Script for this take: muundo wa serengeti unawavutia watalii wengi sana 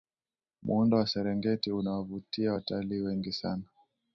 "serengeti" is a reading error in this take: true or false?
false